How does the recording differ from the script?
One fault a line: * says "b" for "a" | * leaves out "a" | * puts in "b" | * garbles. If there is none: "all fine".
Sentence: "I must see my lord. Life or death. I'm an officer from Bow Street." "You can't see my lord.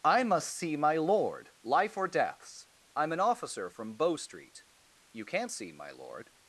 * says "deaths" for "death"